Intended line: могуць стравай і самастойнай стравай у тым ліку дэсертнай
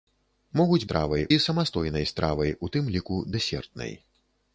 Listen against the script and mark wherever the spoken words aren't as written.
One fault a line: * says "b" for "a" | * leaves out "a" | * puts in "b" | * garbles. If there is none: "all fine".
all fine